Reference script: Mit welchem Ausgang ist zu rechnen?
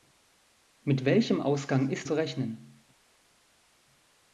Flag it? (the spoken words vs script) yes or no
no